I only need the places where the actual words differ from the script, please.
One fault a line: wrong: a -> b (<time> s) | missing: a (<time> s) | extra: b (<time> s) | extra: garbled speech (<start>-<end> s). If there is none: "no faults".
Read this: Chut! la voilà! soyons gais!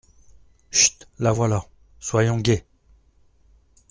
no faults